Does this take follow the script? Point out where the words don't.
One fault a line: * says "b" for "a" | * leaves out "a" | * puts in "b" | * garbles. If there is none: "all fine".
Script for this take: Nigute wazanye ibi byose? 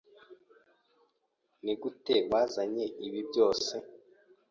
all fine